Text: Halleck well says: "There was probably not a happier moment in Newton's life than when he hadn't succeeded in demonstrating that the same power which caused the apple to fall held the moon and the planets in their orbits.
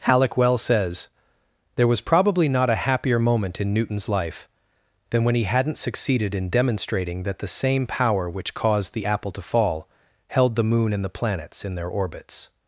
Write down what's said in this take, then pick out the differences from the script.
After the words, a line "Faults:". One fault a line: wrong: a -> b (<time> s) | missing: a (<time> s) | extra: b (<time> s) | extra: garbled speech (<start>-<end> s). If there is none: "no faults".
Halleck well says: "There was probably not a happier moment in Newton's life than when he hadn't succeeded in demonstrating that the same power which caused the apple to fall held the moon and the planets in their orbits.
Faults:
no faults